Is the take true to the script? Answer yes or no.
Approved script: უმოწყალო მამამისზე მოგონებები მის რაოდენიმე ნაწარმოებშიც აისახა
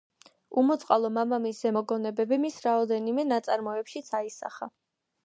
yes